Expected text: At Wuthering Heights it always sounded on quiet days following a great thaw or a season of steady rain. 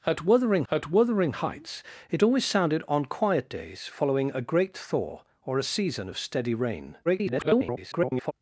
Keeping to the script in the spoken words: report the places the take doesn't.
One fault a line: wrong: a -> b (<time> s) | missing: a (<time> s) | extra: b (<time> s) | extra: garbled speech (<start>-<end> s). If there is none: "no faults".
extra: at Wuthering (0.7 s)
extra: garbled speech (7.1-8.3 s)